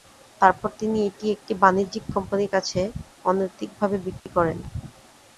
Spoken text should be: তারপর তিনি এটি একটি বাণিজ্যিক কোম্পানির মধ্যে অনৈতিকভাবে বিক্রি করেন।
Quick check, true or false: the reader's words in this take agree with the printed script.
false